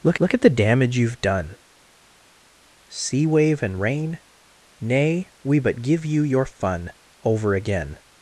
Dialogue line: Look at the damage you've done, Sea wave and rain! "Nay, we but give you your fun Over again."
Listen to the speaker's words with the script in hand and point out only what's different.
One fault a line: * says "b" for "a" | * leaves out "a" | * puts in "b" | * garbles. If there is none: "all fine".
* puts in "look"